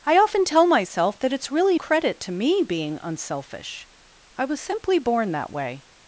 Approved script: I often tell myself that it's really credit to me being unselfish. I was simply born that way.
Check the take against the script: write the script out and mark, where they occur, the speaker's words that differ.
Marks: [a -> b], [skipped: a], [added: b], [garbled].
I often tell myself that it's really credit to me being unselfish. I was simply born that way.